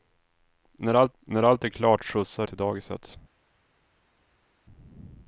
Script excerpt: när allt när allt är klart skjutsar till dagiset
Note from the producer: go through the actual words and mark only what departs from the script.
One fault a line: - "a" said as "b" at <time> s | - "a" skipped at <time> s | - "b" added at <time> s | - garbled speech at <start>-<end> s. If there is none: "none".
none